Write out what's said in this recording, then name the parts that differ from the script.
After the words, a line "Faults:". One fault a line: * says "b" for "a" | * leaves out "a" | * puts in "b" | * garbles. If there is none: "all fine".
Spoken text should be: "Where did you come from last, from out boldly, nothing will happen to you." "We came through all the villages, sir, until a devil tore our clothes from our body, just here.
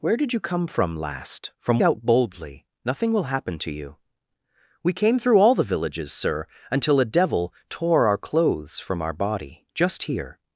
"Where did you come from last, from out boldly, nothing will happen to you." "We came through all the villages, sir, until a devil tore our clothes from our body, just here.
Faults:
all fine